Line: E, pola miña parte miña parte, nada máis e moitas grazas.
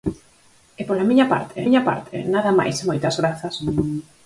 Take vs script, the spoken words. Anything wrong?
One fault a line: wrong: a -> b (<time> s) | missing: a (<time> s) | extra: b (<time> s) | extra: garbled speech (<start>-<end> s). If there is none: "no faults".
no faults